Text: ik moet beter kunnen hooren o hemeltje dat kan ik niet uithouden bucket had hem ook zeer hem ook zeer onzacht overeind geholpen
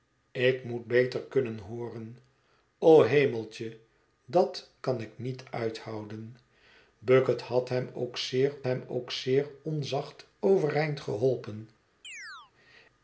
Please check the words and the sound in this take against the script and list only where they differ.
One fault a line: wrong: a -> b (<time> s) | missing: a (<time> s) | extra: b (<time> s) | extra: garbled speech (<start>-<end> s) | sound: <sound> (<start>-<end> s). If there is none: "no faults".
sound: chirp (12.0-12.5 s)